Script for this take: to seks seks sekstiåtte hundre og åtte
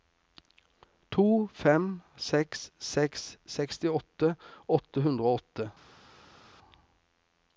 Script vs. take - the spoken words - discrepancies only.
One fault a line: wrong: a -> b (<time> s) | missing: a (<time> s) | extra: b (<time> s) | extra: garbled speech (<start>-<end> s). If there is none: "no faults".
extra: fem (1.6 s)
extra: åtte (4.8 s)